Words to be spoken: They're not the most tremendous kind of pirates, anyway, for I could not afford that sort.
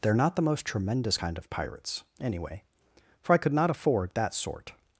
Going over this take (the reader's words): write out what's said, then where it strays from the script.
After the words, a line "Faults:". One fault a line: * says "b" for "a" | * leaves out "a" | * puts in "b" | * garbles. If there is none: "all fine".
They're not the most tremendous kind of pirates, anyway, for I could not afford that sort.
Faults:
all fine